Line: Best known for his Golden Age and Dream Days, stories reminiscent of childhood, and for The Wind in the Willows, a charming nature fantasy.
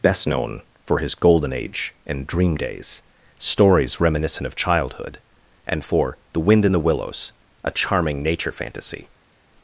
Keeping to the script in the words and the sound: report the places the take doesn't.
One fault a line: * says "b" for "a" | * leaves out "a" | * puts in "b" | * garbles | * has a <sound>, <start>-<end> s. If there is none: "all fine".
all fine